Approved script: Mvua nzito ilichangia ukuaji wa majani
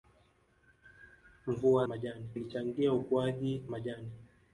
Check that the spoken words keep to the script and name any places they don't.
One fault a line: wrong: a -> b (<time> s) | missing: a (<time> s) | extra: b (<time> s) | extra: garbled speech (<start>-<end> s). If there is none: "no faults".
wrong: nzito -> majani (1.9 s)
missing: wa (3.6 s)